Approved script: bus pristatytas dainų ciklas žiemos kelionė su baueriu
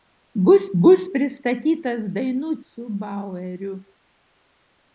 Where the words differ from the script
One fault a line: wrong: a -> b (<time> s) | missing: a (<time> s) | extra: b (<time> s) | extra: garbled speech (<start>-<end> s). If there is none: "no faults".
extra: bus (0.8 s)
missing: ciklas žiemos kelionė (2.5 s)